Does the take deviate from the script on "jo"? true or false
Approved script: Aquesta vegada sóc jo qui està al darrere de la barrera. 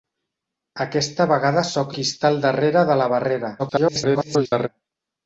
true